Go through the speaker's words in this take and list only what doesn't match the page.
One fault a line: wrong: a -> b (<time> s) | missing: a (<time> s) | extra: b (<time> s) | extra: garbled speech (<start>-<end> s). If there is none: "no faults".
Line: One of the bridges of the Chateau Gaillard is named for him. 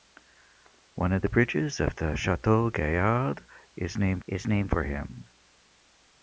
extra: is named (4.3 s)